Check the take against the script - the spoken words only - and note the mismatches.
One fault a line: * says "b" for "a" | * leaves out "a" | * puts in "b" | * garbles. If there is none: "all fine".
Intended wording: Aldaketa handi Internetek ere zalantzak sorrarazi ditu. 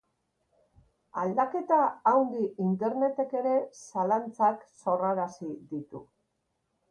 all fine